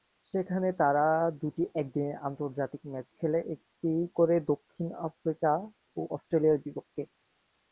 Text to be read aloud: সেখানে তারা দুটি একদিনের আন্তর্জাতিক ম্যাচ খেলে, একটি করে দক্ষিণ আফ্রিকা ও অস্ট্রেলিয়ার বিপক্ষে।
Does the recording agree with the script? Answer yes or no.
yes